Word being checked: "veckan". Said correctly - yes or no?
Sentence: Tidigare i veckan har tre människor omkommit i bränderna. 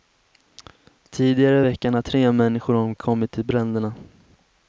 yes